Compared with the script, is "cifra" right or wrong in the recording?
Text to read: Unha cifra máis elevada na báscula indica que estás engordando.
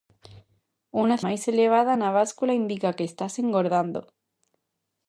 wrong